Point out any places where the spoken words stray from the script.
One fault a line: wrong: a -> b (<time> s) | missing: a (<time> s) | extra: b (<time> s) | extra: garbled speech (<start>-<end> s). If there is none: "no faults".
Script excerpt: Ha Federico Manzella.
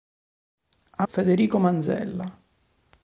no faults